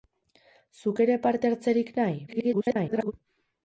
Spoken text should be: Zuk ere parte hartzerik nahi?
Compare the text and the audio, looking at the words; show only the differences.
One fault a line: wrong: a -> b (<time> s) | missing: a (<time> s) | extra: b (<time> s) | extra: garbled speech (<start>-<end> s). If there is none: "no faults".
extra: garbled speech (2.3-3.1 s)